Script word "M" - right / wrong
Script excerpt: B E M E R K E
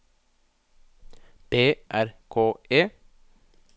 wrong